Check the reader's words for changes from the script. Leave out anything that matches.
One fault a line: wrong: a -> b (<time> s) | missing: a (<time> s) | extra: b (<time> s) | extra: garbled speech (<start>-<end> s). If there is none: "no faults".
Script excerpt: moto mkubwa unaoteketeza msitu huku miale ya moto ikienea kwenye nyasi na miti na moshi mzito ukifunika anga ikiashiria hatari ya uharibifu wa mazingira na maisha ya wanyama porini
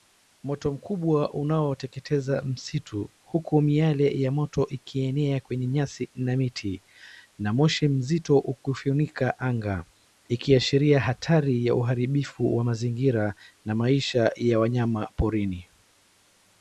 no faults